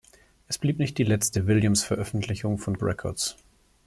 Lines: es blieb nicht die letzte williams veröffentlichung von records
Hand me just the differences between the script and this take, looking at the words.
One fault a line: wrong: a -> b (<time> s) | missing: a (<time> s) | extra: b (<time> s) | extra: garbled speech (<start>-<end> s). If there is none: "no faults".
no faults